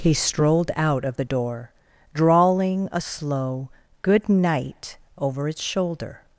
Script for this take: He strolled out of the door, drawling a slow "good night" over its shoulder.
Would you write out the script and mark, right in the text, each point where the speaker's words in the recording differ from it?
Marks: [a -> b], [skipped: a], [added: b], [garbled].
He strolled out of the door, drawling a slow "good night" over its shoulder.